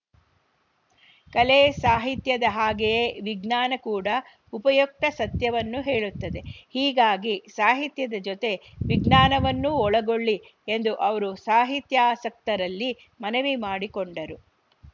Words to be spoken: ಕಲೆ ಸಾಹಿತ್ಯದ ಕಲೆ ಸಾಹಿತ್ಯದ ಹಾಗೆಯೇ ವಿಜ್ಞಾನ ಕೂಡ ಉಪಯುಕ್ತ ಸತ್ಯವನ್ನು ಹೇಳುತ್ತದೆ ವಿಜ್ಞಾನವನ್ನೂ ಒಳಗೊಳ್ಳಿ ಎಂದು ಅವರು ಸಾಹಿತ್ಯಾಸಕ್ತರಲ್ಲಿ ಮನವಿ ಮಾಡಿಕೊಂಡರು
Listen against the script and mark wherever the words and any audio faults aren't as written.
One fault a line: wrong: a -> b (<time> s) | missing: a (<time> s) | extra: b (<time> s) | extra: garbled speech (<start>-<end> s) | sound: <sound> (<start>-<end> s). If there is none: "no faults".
missing: ಕಲೆ ಸಾಹಿತ್ಯದ (2.5 s)
extra: ಹೀಗಾಗಿ ಸಾಹಿತ್ಯದ ಜೊತೆ (6.7 s)